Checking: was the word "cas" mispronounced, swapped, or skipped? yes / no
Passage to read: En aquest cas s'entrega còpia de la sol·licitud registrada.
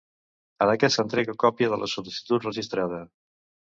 yes